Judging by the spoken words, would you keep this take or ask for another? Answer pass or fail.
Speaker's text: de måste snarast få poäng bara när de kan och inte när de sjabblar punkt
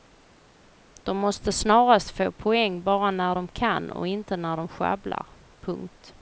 pass